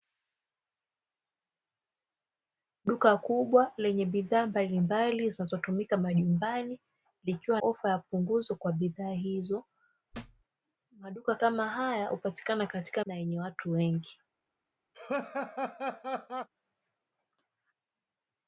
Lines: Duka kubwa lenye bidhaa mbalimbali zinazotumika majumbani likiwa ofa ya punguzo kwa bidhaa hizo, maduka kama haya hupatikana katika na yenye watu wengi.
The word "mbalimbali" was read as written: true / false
true